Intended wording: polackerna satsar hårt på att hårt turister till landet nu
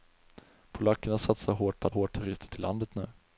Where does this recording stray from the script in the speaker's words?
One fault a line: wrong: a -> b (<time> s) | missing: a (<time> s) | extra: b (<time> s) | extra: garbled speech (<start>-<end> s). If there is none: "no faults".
no faults